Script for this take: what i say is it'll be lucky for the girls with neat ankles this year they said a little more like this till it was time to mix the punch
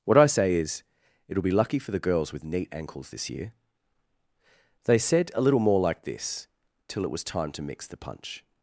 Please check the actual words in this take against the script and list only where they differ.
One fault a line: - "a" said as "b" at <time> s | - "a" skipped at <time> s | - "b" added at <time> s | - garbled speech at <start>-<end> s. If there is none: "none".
none